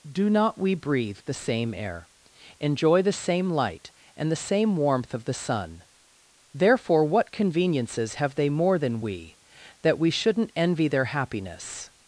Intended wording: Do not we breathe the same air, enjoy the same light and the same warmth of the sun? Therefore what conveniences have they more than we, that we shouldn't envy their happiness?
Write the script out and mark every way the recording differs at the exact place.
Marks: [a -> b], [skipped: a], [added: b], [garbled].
Do not we breathe the same air, enjoy the same light and the same warmth of the sun? Therefore what conveniences have they more than we, that we shouldn't envy their happiness?